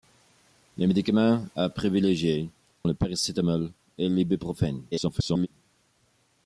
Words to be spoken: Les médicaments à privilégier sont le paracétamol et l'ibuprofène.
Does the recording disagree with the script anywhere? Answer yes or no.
yes